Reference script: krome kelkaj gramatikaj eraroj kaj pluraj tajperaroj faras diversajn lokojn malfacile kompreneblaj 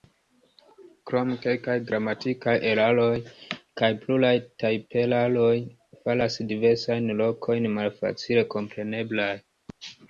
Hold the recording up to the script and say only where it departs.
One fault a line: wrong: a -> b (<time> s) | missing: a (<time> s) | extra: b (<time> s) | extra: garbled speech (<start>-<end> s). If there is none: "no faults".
no faults